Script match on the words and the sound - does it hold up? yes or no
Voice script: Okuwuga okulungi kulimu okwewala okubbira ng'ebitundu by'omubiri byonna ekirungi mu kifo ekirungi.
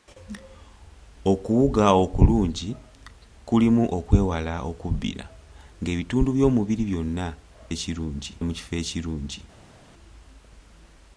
yes